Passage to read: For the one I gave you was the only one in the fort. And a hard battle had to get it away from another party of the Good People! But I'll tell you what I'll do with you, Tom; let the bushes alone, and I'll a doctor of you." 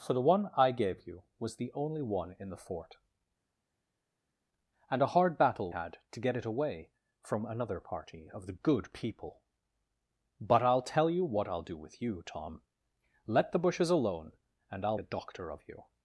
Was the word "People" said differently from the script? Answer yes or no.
no